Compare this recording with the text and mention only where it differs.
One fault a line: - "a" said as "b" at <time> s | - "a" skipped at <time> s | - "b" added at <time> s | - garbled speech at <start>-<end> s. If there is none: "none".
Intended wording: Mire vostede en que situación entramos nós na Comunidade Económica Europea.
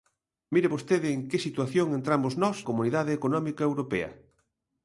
- "na" skipped at 2.6 s